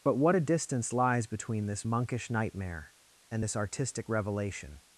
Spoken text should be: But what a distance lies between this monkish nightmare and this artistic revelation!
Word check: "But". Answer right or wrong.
right